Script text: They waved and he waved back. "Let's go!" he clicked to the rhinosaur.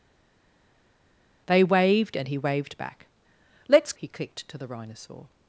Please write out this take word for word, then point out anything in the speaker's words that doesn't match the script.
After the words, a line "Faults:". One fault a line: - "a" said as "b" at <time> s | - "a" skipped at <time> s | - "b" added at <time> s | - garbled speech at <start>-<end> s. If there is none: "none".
They waved and he waved back. "Let's!" he clicked to the rhinosaur.
Faults:
- "go" skipped at 3.9 s